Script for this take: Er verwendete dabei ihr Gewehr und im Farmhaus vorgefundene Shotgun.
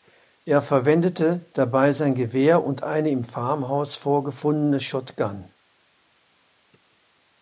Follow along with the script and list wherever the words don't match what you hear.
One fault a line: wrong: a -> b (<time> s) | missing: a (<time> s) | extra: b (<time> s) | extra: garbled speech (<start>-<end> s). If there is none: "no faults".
wrong: ihr -> sein (1.9 s)
extra: eine (2.8 s)